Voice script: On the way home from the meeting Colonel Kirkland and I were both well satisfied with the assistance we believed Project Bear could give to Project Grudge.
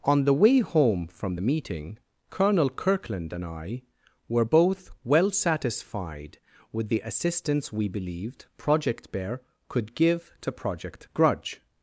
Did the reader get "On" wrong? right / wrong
right